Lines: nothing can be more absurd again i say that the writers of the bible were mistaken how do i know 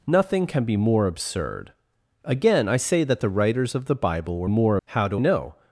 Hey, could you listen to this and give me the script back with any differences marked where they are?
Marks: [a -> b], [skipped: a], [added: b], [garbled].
nothing can be more absurd again i say that the writers of the bible were [mistaken -> more] how do [skipped: i] know